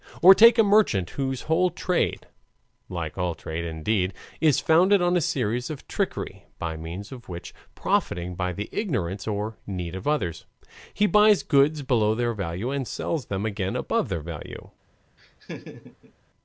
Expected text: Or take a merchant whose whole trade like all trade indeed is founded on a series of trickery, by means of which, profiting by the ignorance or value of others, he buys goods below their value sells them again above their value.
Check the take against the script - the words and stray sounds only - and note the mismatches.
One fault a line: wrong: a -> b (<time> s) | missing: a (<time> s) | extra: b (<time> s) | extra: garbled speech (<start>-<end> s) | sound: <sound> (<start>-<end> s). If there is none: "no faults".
wrong: value -> need (9.7 s)
extra: and (12.7 s)
sound: laugh (15.2-16.1 s)